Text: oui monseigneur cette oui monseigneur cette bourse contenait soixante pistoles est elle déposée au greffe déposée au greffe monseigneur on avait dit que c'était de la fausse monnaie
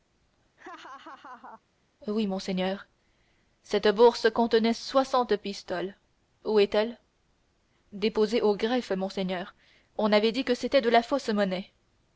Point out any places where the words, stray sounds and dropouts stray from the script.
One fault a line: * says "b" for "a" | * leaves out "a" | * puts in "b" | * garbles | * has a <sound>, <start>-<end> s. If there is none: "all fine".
* has a laugh, 0.6-1.6 s
* leaves out "oui monseigneur cette"
* puts in "où"
* leaves out "déposée au greffe"